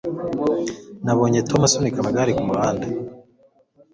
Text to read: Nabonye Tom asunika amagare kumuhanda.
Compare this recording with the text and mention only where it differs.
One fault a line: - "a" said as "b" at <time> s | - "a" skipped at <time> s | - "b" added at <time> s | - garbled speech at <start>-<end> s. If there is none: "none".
none